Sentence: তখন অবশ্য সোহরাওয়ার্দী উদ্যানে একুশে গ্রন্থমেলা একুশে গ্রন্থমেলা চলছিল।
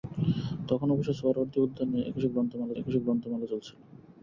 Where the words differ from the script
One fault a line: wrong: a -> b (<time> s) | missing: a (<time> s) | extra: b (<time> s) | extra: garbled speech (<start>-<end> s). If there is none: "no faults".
no faults